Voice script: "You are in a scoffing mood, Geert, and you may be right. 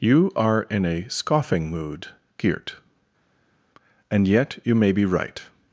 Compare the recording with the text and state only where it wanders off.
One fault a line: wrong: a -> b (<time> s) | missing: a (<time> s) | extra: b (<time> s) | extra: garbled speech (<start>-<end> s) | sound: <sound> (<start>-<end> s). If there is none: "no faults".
extra: yet (4.3 s)